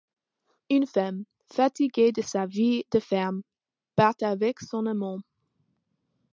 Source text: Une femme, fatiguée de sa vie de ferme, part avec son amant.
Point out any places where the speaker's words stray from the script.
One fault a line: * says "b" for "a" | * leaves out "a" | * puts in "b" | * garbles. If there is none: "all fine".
all fine